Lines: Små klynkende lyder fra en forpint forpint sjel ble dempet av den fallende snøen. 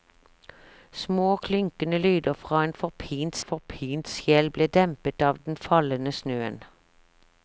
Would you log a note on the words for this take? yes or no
no